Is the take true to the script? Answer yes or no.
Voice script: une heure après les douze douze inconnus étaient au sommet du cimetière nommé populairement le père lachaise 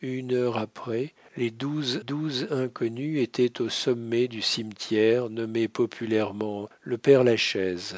yes